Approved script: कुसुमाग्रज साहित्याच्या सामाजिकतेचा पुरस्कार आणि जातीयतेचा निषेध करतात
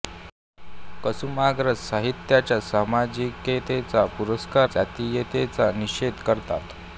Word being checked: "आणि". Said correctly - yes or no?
no